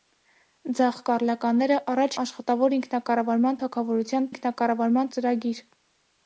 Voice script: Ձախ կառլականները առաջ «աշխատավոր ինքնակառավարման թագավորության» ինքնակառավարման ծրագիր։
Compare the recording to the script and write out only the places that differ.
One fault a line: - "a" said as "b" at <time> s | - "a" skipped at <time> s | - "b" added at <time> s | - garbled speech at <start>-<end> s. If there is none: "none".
none